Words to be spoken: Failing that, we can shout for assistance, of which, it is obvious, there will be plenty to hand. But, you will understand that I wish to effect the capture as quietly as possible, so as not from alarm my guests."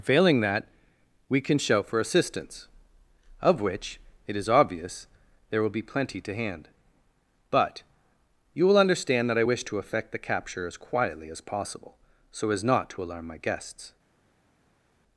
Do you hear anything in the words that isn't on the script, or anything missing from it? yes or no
yes